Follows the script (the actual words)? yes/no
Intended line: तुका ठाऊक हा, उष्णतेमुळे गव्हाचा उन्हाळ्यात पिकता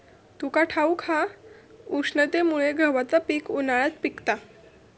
no